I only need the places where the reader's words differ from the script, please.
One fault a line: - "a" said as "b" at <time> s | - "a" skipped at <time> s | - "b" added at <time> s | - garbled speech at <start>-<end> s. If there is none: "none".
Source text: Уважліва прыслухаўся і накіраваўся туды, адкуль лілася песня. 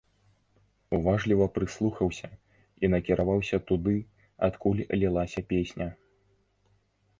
none